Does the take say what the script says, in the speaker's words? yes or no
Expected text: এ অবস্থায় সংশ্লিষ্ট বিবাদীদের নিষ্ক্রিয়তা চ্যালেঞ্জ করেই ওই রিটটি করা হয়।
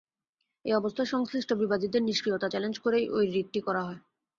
yes